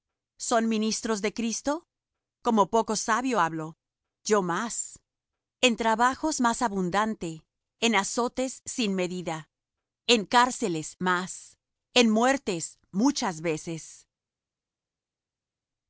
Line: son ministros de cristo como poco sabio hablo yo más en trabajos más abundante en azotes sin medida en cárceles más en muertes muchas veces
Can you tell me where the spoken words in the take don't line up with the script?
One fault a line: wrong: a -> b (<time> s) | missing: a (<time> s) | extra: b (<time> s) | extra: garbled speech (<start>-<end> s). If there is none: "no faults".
no faults